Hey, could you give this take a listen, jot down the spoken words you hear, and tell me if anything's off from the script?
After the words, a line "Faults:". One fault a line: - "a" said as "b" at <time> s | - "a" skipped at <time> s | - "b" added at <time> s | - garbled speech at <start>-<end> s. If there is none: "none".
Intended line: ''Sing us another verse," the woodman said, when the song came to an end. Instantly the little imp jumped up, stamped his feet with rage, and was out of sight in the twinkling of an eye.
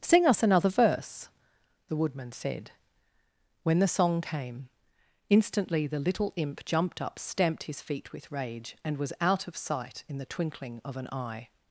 ''Sing us another verse," the woodman said, when the song came. Instantly the little imp jumped up, stamped his feet with rage, and was out of sight in the twinkling of an eye.
Faults:
- "to an end" skipped at 4.7 s